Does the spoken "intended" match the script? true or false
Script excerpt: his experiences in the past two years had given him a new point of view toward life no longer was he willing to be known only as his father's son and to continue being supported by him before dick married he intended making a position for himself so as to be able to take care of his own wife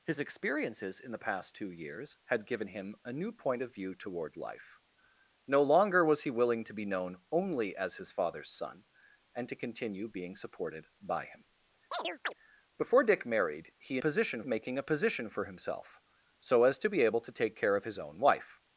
false